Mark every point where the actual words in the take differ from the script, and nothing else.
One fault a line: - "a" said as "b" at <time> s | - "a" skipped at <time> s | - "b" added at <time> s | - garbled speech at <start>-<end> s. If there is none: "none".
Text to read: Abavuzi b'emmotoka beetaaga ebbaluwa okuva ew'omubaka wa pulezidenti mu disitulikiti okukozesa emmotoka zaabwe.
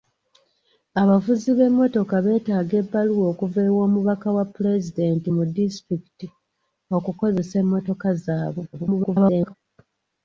- garbled speech at 8.7-9.5 s